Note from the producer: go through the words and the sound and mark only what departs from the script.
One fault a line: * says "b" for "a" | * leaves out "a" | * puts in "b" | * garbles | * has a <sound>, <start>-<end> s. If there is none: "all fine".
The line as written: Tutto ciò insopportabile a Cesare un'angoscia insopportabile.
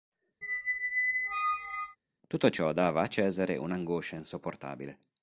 * has a squeak, 0.4-2.0 s
* says "dava" for "insopportabile"